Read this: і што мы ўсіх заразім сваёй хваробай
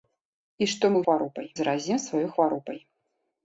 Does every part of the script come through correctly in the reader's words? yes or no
no